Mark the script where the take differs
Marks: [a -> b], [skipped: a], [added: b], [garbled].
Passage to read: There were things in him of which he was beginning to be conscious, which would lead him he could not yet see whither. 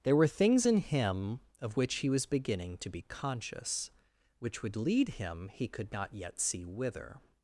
There were things in him of which he was beginning to be conscious, which would lead him he could not yet see whither.